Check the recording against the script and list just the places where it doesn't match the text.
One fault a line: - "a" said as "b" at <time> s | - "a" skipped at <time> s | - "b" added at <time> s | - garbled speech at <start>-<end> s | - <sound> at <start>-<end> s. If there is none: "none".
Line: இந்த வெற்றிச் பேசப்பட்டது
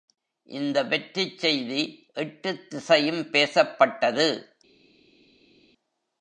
- "செய்தி எட்டுத் திசையும்" added at 1.4 s